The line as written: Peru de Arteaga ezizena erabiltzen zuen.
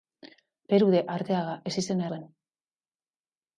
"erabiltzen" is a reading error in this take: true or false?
true